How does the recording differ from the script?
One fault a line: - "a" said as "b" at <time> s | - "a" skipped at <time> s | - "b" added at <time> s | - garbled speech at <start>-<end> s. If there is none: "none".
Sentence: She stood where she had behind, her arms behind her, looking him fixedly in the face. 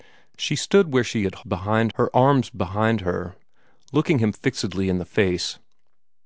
none